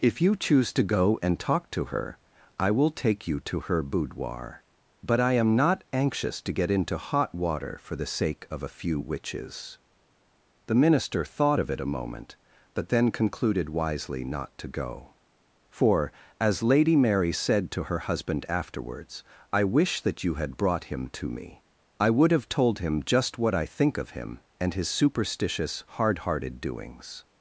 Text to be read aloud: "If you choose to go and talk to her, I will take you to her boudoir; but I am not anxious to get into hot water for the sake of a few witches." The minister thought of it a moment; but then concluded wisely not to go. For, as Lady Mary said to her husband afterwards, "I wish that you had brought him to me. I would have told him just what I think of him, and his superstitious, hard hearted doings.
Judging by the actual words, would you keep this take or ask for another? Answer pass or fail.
pass